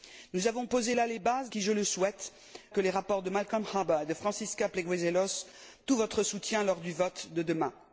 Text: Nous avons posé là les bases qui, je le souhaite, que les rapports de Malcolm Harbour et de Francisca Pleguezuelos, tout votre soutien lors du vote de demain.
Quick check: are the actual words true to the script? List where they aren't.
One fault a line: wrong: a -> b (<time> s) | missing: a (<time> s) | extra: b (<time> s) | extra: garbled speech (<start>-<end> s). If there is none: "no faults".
no faults